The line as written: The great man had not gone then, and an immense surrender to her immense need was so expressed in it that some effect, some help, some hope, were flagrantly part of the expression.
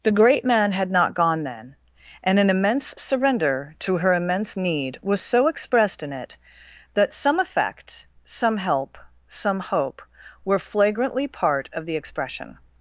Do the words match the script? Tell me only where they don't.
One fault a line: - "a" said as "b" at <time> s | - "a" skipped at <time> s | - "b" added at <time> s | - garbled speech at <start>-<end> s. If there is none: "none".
none